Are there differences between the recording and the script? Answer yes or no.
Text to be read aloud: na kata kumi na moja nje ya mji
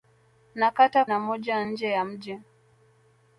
yes